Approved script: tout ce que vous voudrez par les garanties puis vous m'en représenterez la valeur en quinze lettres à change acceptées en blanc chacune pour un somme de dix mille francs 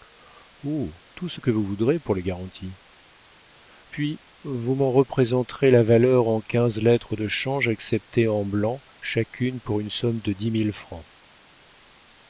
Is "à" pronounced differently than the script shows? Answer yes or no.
yes